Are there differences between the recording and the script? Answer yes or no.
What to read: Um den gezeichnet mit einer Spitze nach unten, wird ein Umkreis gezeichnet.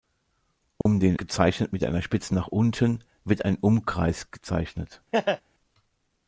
no